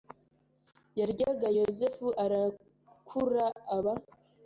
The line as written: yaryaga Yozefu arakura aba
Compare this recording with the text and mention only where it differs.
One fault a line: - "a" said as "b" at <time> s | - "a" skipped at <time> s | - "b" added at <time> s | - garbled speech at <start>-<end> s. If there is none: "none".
none